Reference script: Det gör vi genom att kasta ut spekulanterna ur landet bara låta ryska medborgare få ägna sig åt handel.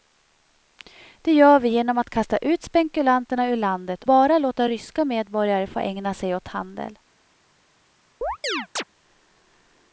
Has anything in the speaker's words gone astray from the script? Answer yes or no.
no